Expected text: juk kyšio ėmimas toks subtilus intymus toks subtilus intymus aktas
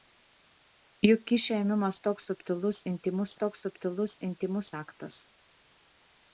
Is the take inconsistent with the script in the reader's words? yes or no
no